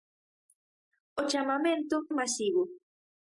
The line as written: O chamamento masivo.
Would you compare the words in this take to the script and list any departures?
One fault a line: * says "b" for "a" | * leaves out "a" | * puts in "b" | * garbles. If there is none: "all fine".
all fine